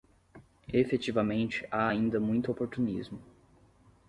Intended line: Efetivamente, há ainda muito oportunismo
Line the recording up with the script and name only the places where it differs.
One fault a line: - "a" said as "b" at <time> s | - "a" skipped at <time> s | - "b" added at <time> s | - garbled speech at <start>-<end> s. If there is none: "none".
none